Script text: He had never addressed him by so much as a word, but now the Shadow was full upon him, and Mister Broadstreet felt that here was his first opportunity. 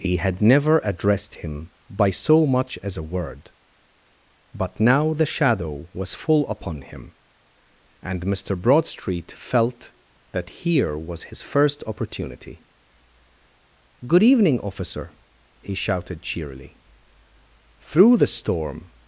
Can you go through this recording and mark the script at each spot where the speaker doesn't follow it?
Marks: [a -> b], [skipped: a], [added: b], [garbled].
He had never addressed him by so much as a word, but now the Shadow was full upon him, and Mister Broadstreet felt that here was his first opportunity. [added: Good evening officer he shouted cheerily through the storm]